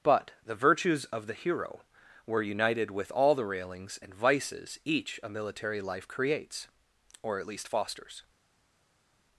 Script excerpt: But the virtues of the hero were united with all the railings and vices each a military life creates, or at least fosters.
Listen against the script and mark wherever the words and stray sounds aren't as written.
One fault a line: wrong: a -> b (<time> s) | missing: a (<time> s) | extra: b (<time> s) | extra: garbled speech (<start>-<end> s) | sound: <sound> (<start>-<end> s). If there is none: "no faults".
no faults